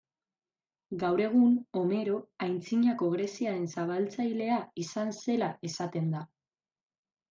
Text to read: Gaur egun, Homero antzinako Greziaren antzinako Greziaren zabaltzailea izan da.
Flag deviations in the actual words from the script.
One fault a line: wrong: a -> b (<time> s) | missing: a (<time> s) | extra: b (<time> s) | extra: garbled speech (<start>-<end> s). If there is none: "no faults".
wrong: antzinako Greziaren zabaltzailea izan -> zabaltzailea izan zela esaten (3.8 s)